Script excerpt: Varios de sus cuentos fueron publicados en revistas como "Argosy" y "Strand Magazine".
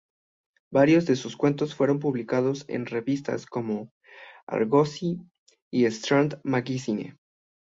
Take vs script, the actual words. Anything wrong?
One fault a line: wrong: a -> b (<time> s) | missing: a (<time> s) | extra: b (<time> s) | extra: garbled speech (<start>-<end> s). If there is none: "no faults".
no faults